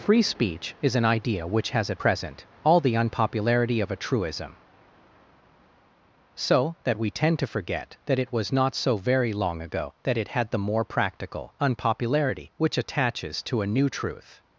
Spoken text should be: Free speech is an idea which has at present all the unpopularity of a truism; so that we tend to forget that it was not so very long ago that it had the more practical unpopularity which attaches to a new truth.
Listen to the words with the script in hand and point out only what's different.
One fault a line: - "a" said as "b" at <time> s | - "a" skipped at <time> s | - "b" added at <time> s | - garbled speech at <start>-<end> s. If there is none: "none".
none